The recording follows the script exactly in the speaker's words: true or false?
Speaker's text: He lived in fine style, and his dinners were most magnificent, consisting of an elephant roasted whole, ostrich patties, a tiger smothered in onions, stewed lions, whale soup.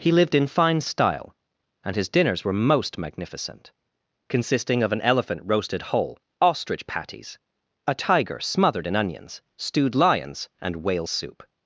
false